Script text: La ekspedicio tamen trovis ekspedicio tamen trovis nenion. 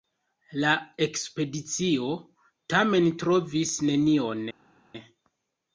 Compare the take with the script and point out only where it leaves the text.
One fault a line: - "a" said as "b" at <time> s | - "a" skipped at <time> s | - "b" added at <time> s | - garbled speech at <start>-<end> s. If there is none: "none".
- "ekspedicio tamen trovis" skipped at 3.8 s